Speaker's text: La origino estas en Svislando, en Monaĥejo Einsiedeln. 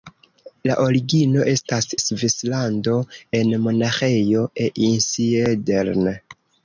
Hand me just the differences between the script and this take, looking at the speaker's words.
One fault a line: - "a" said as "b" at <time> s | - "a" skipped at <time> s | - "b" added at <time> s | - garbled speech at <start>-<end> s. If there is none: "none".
- "en" skipped at 1.9 s